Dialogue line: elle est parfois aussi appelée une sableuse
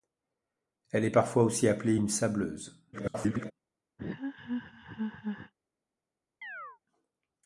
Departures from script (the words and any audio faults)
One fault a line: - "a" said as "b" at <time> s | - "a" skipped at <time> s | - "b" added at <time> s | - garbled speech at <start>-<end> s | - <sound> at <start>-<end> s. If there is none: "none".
- garbled speech at 2.9-3.5 s
- laugh at 4.0-5.5 s
- chirp at 6.4-6.8 s